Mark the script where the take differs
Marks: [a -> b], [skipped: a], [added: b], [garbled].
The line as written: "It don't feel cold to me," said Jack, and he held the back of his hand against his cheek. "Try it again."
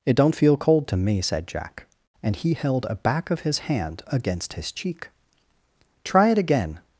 "It don't feel cold to me," said Jack, and he held [the -> a] back of his hand against his cheek. "Try it again."